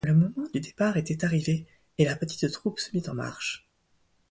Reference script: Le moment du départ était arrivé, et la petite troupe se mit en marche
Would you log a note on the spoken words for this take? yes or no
no